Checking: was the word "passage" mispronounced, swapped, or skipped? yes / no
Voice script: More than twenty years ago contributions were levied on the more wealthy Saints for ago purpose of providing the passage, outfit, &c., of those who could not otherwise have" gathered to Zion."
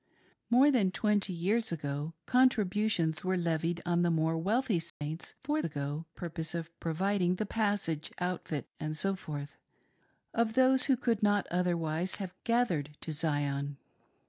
no